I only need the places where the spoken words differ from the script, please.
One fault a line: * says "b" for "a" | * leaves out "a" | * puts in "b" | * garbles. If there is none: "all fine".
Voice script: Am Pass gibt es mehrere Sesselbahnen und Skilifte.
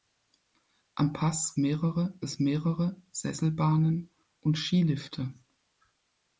* says "mehrere" for "gibt"